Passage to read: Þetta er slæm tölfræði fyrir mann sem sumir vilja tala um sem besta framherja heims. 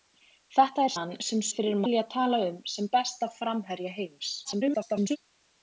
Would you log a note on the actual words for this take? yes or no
yes